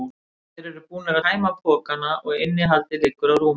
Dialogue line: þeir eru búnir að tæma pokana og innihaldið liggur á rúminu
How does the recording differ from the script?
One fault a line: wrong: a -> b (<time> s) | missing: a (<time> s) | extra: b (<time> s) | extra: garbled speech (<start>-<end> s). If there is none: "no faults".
missing: að (1.2 s)